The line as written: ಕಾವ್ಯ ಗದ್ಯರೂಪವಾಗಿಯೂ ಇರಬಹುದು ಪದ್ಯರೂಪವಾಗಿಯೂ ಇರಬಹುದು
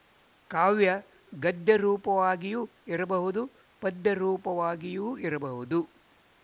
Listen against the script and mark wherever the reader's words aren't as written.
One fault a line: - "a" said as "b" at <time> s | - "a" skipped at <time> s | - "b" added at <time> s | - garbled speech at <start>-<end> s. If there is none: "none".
none